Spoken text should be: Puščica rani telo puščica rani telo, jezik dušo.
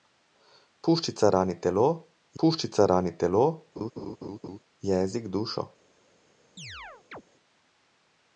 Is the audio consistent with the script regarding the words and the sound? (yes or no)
no